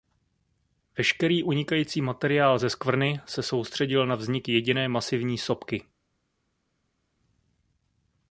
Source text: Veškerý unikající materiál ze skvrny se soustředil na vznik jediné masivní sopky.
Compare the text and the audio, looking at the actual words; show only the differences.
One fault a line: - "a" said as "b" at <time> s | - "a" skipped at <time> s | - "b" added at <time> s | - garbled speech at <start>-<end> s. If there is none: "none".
none